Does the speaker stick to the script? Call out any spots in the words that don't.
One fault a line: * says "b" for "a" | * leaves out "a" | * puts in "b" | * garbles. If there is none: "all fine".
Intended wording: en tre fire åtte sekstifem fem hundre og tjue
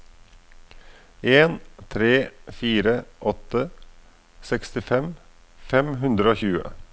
all fine